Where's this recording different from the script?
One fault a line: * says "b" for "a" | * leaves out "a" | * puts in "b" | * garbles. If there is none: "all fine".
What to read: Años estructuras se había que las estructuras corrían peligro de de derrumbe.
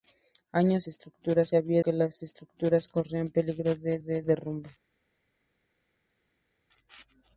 all fine